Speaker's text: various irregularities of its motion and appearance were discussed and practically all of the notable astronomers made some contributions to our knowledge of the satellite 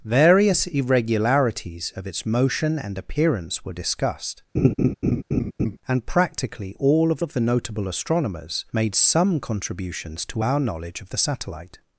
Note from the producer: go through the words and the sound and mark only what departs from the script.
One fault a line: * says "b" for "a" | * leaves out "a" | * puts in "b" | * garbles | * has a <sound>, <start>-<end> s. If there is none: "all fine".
* has a laugh, 4.5-5.8 s
* puts in "of"